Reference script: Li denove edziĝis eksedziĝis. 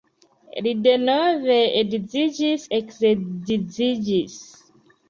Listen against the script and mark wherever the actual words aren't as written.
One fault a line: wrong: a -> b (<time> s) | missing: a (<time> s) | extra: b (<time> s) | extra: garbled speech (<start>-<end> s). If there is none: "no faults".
no faults